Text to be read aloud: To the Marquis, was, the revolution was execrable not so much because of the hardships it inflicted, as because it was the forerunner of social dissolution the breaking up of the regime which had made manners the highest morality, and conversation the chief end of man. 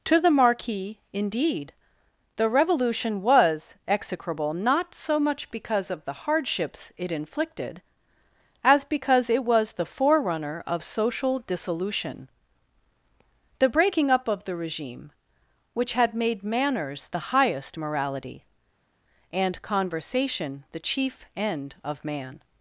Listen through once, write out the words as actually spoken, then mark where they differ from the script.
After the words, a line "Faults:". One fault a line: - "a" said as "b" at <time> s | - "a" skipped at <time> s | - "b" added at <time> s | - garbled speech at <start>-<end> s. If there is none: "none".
To the Marquis, indeed, the revolution was execrable not so much because of the hardships it inflicted, as because it was the forerunner of social dissolution the breaking up of the regime which had made manners the highest morality, and conversation the chief end of man.
Faults:
- "was" said as "indeed" at 1.1 s